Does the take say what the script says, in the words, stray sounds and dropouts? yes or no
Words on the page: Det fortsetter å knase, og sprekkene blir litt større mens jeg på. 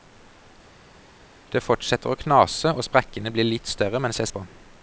yes